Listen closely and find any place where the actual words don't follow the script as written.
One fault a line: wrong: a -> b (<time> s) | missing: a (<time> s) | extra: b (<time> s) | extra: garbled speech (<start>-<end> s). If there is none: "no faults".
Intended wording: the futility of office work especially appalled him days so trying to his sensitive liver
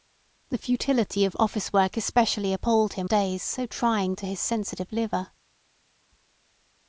no faults